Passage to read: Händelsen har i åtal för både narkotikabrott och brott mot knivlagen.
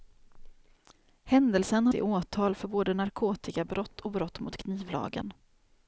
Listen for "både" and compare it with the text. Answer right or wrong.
right